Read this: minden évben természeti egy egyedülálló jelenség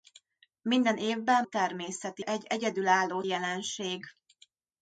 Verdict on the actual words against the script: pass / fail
pass